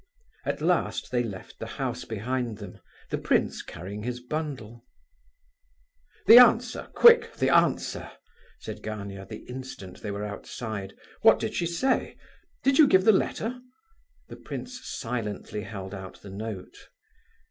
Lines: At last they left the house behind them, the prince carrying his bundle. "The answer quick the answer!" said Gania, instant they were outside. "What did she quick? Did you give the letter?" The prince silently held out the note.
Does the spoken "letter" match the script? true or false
true